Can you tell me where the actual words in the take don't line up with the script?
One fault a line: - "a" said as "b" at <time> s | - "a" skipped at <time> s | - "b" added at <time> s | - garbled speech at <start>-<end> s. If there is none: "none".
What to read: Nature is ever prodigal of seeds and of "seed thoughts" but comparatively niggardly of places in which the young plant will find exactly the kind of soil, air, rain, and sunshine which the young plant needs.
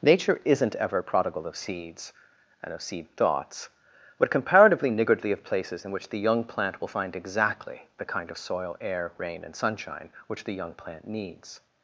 - "is" said as "isn't" at 0.5 s